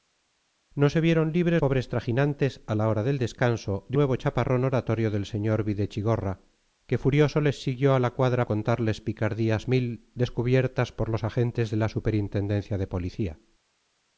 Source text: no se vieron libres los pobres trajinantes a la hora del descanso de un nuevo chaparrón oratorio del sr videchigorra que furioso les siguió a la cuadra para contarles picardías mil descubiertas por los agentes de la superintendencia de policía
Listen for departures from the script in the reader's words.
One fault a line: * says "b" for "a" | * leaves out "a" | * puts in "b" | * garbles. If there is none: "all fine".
* leaves out "los"
* leaves out "un"
* leaves out "para"